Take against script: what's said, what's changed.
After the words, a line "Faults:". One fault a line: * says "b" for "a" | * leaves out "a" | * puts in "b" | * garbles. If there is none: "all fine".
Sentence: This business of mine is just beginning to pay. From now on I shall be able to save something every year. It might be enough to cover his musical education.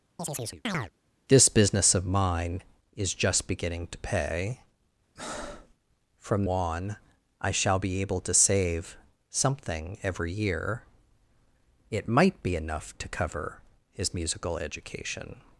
This business of mine is just beginning to pay. From on I shall be able to save something every year. It might be enough to cover his musical education.
Faults:
* leaves out "now"